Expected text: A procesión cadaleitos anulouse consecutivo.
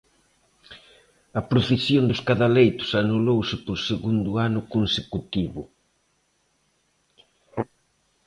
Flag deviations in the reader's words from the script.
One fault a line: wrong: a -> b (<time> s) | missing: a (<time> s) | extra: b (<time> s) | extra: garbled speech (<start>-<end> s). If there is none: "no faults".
extra: dos (2.1 s)
extra: por segundo ano (3.7 s)